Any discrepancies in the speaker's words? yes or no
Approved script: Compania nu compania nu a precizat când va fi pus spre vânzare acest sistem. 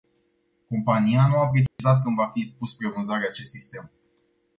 yes